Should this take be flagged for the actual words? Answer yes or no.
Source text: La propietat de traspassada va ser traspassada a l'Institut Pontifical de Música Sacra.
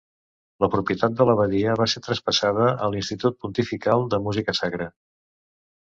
yes